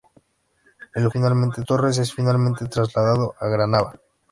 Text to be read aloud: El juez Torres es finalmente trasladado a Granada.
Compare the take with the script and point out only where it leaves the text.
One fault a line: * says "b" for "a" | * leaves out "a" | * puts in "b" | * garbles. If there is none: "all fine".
* says "finalmente" for "juez"